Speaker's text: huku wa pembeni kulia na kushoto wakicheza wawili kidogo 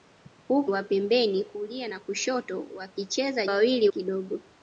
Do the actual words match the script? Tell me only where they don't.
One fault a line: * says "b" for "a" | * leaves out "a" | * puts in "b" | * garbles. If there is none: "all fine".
all fine